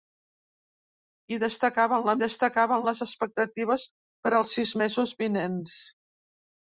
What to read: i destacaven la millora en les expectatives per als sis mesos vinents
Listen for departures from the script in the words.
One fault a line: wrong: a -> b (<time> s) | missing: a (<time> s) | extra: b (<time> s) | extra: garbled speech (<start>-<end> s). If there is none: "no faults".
wrong: millora -> destacaven (2.2 s)